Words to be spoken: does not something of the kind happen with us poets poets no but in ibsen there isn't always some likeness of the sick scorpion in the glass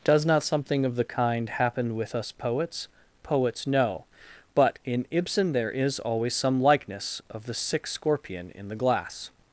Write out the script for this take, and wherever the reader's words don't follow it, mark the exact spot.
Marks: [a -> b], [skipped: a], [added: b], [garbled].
does not something of the kind happen with us poets poets no but in ibsen there [isn't -> is] always some likeness of the sick scorpion in the glass